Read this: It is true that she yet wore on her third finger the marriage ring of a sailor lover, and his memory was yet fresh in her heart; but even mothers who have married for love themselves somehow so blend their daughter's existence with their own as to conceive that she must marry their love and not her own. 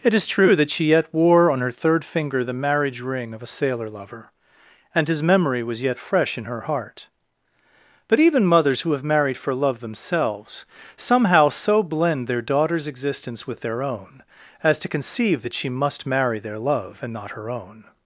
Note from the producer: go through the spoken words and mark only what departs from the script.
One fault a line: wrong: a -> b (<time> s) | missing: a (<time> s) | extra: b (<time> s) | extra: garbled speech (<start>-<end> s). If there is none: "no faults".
no faults